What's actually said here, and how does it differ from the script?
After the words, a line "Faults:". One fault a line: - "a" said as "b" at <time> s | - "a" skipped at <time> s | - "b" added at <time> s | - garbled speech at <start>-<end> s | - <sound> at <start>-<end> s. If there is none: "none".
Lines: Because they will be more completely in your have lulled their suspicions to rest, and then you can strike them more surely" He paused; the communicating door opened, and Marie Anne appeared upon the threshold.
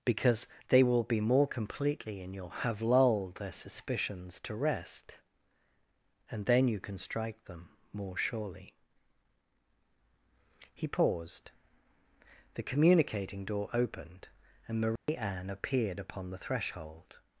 Because they will be more completely in your have lulled their suspicions to rest, and then you can strike them more surely" He paused; the communicating door opened, and Marie Anne appeared upon the threshold.
Faults:
- dropout at 15.0-15.1 s